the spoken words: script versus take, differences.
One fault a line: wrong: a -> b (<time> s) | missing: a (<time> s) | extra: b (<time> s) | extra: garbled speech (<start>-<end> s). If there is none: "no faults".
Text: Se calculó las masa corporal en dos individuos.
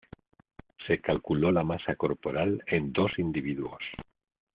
wrong: las -> la (1.5 s)